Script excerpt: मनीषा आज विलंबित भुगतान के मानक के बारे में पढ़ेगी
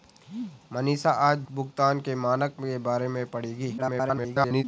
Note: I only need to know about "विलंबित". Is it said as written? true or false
false